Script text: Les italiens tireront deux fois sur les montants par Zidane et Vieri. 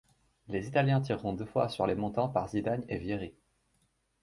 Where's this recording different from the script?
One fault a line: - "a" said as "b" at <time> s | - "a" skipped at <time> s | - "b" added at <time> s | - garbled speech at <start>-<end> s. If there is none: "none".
none